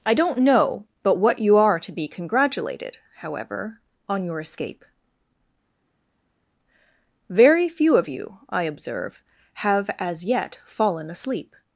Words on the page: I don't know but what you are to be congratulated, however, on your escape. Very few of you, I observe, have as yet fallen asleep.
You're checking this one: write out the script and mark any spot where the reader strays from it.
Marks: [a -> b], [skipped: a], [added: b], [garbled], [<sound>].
I don't know but what you are to be congratulated, however, on your escape. Very few of you, I observe, have as yet fallen asleep.